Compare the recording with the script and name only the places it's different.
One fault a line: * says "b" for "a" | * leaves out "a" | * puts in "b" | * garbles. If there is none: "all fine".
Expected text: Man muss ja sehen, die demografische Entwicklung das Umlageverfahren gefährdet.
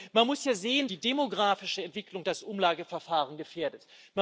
all fine